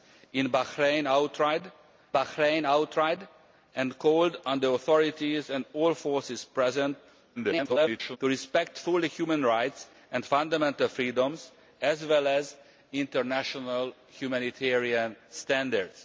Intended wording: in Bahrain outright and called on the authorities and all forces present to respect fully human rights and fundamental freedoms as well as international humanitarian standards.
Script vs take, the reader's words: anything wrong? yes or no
yes